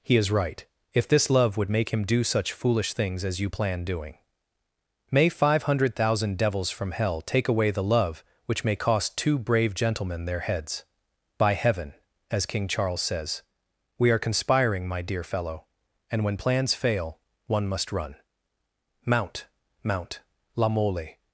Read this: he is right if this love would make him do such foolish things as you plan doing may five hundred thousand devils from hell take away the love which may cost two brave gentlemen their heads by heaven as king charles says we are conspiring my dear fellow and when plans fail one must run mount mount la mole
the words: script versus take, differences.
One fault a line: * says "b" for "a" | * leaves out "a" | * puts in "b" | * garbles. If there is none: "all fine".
all fine